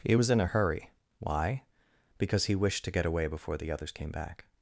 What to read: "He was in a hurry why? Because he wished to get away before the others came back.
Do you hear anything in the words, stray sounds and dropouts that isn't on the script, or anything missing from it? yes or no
no